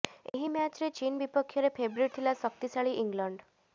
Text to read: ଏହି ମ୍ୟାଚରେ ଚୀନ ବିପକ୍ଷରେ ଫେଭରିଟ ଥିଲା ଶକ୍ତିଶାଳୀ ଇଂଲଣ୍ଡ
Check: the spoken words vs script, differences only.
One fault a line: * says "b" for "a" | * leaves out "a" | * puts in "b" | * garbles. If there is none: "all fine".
all fine